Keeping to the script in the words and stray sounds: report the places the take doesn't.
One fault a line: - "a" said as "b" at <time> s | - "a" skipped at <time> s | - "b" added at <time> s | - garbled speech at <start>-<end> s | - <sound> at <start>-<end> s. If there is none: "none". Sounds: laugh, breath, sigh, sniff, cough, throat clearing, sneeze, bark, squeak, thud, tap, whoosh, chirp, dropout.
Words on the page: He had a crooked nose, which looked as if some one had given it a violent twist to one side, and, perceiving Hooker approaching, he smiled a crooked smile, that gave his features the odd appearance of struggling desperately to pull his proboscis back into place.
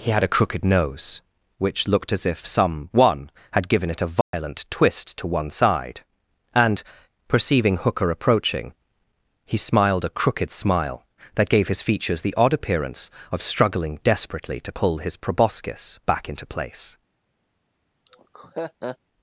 - dropout at 4.2-4.3 s
- laugh at 18.1-19.0 s